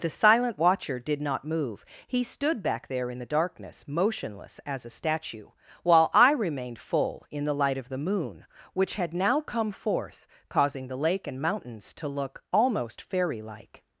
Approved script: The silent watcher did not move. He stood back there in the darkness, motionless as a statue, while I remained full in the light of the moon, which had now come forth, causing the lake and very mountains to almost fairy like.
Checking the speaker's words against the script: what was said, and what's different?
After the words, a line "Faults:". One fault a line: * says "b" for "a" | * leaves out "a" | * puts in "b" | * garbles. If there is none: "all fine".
The silent watcher did not move. He stood back there in the darkness, motionless as a statue, while I remained full in the light of the moon, which had now come forth, causing the lake and mountains to look almost fairy like.
Faults:
* leaves out "very"
* puts in "look"